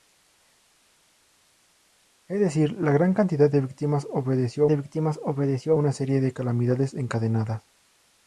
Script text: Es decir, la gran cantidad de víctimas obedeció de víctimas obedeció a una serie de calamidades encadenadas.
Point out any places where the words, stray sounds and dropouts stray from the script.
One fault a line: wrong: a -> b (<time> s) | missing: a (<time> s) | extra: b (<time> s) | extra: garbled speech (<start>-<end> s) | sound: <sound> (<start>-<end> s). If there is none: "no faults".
no faults